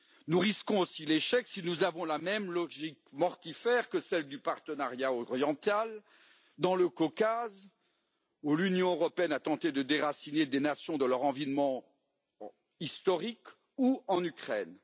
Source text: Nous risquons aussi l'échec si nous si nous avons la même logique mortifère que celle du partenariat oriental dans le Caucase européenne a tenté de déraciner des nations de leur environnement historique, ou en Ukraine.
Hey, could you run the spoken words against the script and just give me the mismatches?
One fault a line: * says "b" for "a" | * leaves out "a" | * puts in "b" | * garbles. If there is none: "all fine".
* leaves out "si nous"
* puts in "où l'Union"